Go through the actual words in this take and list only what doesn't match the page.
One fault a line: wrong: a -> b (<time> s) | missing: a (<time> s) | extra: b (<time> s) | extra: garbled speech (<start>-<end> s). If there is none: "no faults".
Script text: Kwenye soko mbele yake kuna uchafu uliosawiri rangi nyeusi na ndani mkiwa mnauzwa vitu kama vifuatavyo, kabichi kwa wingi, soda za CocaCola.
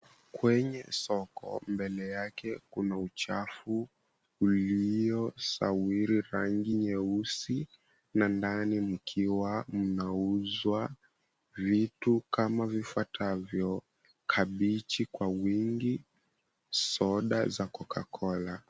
no faults